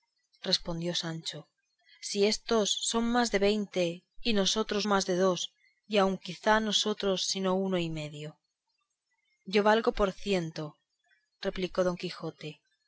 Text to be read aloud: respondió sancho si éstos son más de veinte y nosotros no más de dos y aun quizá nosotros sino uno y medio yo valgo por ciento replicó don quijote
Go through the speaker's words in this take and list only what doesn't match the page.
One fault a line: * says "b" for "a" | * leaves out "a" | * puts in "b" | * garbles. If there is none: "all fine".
* leaves out "no"